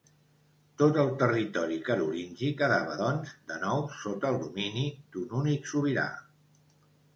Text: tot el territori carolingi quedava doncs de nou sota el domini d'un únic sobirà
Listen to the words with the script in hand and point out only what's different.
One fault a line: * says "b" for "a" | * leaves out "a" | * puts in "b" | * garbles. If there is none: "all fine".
all fine